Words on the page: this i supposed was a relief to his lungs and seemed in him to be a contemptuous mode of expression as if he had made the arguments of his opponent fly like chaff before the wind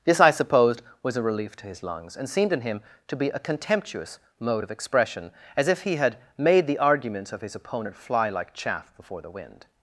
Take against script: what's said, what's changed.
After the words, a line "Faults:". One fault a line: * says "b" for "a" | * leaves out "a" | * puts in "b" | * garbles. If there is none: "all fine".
this i supposed was a relief to his lungs and seemed in him to be a contemptuous mode of expression as if he had made the arguments of his opponent fly like chaff before the wind
Faults:
all fine